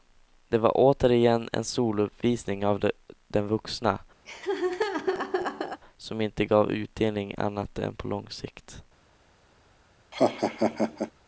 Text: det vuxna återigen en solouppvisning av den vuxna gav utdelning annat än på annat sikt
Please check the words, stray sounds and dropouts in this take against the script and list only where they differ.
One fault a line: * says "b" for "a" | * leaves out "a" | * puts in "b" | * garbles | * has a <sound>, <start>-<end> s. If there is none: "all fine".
* says "var" for "vuxna"
* has a laugh, 4.3-5.8 s
* puts in "som inte"
* says "lång" for "annat"
* has a laugh, 10.1-11.1 s